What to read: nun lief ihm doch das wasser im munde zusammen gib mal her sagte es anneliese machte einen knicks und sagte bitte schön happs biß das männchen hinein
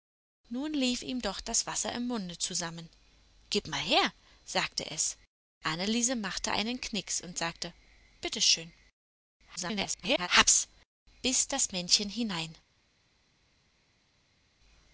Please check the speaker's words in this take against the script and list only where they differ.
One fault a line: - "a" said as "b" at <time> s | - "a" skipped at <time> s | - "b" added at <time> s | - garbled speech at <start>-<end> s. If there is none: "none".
- garbled speech at 9.6-10.3 s